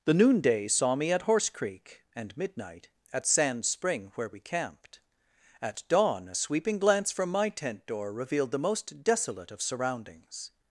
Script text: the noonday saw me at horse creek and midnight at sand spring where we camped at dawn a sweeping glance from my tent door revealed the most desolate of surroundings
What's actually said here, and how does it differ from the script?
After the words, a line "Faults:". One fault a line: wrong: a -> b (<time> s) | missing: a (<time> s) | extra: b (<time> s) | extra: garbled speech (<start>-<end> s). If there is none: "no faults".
the noonday saw me at horse creek and midnight at sand spring where we camped at dawn a sweeping glance from my tent door revealed the most desolate of surroundings
Faults:
no faults